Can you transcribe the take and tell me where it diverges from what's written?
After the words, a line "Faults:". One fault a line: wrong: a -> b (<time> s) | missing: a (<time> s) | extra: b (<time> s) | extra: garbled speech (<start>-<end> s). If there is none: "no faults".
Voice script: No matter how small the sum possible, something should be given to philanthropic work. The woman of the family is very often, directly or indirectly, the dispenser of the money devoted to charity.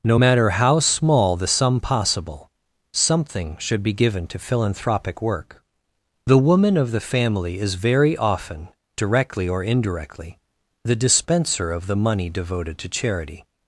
No matter how small the sum possible, something should be given to philanthropic work. The woman of the family is very often, directly or indirectly, the dispenser of the money devoted to charity.
Faults:
no faults